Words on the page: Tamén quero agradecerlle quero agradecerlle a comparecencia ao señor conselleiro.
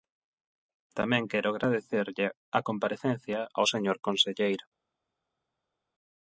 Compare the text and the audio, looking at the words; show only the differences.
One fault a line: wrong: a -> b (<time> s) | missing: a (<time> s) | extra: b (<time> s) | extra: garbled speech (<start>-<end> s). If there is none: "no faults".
missing: quero agradecerlle (2.3 s)